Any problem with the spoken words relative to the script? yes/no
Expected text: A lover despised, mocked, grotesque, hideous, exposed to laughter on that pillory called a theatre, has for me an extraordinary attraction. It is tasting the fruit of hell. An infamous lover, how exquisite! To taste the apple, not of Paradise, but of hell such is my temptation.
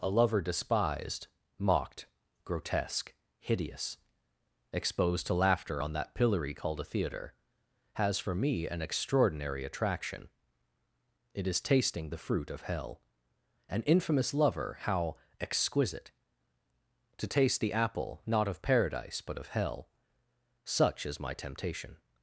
no